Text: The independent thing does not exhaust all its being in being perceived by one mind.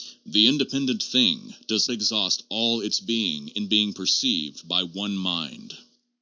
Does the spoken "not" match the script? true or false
false